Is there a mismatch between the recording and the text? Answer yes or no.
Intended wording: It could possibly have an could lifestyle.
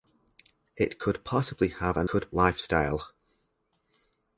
no